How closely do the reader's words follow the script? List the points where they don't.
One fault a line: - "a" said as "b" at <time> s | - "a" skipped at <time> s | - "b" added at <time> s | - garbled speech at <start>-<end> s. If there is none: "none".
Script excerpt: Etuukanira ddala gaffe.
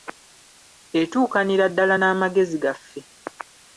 - "n'amagezi" added at 2.0 s